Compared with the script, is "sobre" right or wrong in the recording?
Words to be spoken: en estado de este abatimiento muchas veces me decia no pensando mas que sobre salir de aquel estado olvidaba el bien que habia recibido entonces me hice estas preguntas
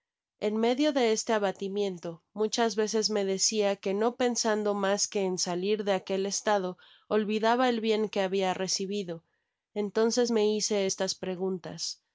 wrong